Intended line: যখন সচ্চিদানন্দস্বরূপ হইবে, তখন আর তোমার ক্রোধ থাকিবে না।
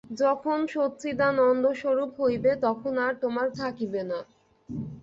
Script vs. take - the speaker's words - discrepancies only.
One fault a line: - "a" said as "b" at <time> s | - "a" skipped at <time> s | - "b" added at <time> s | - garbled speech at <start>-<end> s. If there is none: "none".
- "ক্রোধ" skipped at 3.5 s